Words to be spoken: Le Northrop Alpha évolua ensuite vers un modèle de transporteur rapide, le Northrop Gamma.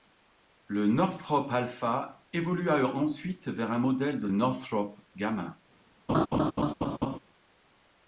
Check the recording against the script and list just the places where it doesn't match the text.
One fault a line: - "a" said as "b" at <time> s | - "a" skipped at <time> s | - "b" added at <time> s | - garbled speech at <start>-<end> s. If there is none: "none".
- "transporteur rapide le" skipped at 4.3 s